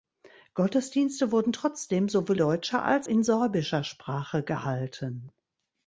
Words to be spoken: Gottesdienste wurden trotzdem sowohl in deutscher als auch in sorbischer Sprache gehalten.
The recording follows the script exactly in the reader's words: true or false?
false